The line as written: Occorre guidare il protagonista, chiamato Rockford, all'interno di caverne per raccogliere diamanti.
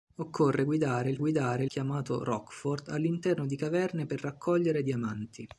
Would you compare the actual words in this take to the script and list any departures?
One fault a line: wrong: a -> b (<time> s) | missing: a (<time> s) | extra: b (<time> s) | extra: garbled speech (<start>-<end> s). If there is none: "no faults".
wrong: protagonista -> guidare (1.2 s)